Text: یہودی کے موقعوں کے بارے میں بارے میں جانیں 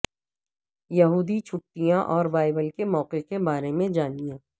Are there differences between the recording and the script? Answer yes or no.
yes